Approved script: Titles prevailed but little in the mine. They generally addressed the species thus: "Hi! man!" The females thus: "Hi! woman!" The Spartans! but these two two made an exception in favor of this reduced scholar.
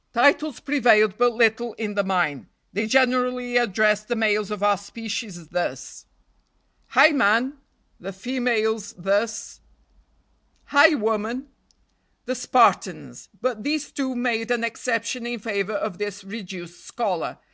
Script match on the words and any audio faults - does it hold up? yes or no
no